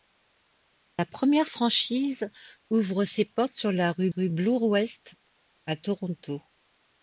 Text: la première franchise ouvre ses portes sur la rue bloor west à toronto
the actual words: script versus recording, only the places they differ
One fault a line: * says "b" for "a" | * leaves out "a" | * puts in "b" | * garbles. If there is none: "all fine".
* puts in "rue"